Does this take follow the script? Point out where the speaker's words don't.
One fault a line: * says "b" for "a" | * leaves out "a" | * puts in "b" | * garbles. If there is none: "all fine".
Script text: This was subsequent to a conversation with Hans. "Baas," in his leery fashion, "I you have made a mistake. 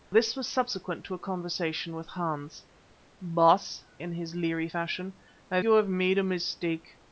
all fine